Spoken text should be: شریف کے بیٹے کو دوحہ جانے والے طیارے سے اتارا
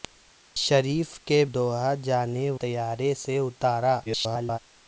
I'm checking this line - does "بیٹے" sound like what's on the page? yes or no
no